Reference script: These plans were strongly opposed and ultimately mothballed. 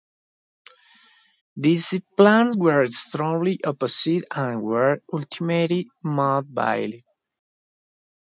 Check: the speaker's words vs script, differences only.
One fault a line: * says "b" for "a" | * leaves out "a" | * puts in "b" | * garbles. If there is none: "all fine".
* puts in "were"